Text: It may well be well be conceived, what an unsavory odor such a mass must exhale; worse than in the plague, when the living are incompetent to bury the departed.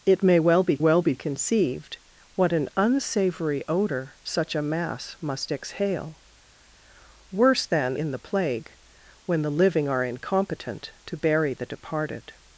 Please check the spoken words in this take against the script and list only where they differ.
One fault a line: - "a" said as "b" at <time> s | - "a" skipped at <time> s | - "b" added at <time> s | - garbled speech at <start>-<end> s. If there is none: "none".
none